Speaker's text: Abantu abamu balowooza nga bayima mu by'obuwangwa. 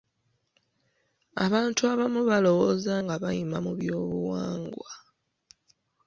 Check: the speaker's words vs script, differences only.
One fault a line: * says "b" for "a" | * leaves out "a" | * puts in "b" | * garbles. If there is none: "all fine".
all fine